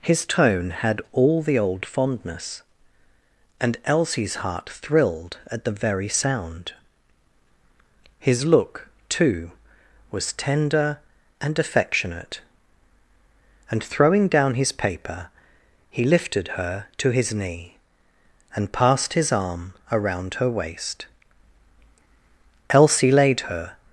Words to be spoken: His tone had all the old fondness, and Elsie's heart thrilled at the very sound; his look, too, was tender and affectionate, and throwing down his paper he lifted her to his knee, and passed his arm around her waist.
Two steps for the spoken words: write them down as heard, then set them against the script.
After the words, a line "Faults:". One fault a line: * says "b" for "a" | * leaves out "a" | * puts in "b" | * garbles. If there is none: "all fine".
His tone had all the old fondness, and Elsie's heart thrilled at the very sound; his look, too, was tender and affectionate, and throwing down his paper he lifted her to his knee, and passed his arm around her waist. Elsie laid her
Faults:
* puts in "Elsie laid her"